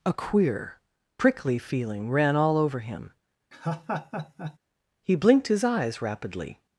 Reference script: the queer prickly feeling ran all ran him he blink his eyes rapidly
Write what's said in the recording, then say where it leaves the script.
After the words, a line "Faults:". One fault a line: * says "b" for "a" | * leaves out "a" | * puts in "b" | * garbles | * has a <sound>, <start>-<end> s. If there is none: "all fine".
a queer prickly feeling ran all over him he blinked his eyes rapidly
Faults:
* says "a" for "the"
* says "over" for "ran"
* has a laugh, 3.5-4.6 s
* says "blinked" for "blink"